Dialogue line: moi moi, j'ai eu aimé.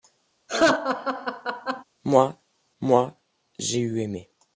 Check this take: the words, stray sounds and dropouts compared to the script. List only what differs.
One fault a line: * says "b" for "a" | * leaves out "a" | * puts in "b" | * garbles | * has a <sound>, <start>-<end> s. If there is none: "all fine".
* has a laugh, 0.5-1.8 s